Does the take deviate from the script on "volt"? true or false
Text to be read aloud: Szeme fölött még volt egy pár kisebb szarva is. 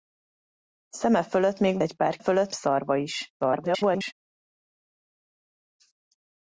true